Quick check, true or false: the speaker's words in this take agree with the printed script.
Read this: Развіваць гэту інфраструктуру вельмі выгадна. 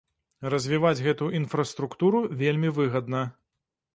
true